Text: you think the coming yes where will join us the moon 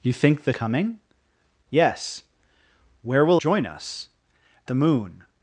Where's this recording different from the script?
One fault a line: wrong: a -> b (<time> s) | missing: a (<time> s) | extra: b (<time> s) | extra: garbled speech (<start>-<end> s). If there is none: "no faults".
no faults